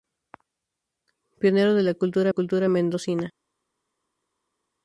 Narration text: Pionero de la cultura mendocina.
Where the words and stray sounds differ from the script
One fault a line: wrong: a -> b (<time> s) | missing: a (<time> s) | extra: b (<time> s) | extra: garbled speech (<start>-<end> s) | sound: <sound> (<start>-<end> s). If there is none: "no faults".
extra: cultura (2.3 s)